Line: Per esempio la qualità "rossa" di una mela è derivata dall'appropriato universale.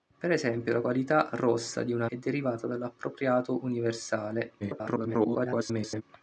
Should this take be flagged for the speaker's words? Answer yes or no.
yes